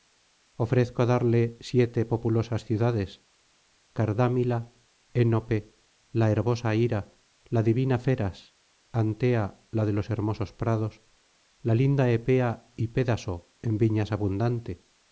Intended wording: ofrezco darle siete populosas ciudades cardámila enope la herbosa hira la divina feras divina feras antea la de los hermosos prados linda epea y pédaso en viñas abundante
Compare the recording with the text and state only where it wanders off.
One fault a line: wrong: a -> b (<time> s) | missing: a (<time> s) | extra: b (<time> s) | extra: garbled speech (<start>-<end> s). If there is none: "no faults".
missing: divina feras (8.5 s)
extra: la (11.6 s)